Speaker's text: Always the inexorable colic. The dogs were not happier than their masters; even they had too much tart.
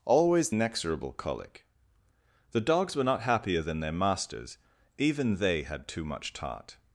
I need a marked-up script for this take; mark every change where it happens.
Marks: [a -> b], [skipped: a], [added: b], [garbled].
Always [skipped: the] inexorable colic. The dogs were not happier than their masters; even they had too much tart.